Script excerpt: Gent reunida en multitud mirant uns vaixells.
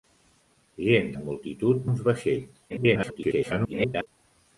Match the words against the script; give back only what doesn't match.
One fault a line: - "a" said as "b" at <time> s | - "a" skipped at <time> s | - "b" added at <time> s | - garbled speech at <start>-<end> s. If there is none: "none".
- "reunida" skipped at 1.1 s
- "mirant" skipped at 1.9 s
- garbled speech at 2.7-4.1 s